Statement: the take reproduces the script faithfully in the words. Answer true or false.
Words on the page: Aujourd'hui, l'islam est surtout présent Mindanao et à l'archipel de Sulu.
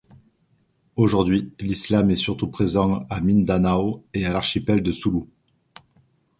false